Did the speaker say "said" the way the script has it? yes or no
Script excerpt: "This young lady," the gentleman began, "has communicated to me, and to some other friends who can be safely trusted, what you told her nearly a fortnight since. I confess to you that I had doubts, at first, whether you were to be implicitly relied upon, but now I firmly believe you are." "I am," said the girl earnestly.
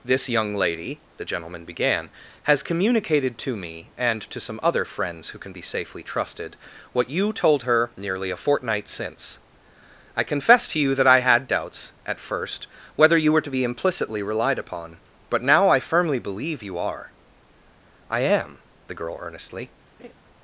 no